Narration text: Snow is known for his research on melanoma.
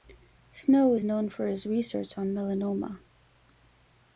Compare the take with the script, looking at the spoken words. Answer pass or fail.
pass